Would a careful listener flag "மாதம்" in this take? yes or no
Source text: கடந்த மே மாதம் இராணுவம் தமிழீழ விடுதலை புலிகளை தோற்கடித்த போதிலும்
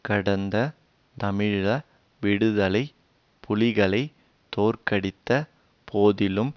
yes